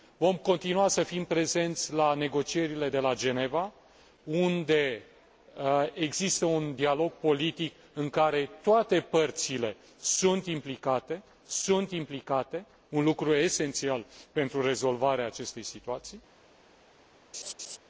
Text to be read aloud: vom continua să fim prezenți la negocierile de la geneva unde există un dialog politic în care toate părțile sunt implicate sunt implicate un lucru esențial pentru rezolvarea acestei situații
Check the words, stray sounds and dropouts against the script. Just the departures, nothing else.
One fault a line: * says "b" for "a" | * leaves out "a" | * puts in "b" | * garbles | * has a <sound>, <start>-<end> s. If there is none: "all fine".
* has a laugh, 17.3-17.8 s